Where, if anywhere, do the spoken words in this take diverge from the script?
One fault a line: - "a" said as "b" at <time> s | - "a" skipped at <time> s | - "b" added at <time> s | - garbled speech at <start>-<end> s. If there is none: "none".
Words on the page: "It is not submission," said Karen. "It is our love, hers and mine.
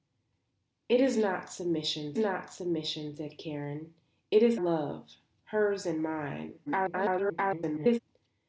- "not submission" added at 2.2 s
- "our" skipped at 4.6 s
- garbled speech at 6.7-8.0 s